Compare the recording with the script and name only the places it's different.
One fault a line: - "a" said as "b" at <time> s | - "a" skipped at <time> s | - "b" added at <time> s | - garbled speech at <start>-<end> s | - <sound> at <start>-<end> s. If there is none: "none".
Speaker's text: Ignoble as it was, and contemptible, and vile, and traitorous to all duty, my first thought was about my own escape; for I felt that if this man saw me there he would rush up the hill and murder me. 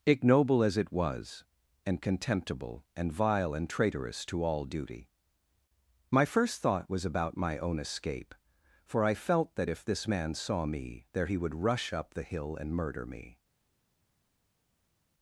none